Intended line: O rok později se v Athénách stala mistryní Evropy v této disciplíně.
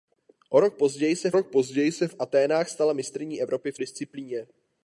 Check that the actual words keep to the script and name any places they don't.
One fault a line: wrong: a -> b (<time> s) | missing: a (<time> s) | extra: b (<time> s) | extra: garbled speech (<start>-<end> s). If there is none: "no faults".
extra: rok později se (1.3 s)
missing: této (3.8 s)